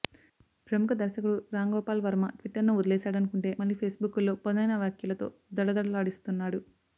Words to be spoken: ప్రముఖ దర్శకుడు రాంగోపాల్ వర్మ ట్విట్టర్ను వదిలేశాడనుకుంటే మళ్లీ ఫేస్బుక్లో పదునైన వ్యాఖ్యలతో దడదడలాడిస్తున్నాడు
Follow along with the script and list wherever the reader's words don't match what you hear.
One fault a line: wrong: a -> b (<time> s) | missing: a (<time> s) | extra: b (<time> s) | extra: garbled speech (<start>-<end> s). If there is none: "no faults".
no faults